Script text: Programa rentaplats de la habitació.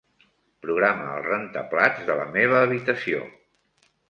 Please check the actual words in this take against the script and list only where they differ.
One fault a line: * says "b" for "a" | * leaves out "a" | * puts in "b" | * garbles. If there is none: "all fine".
* puts in "el"
* puts in "meva"